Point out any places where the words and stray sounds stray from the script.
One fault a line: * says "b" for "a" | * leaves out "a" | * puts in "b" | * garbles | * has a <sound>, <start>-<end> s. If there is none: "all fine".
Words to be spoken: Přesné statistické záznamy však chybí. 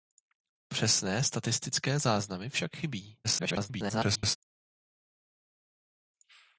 * garbles